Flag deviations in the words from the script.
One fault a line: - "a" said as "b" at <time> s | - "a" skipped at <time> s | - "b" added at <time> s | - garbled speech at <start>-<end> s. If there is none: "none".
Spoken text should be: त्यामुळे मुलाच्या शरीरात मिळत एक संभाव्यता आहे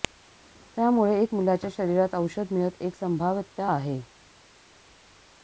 - "एक" added at 1.2 s
- "औषध" added at 2.2 s